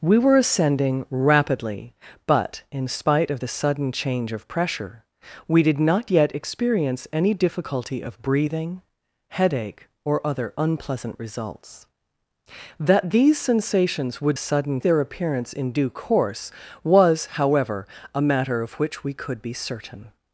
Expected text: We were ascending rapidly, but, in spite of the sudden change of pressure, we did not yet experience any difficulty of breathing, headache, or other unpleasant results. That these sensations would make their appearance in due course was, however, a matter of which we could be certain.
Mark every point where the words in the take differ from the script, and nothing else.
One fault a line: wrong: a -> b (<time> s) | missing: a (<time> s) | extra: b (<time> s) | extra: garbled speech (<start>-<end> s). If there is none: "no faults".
wrong: make -> sudden (14.4 s)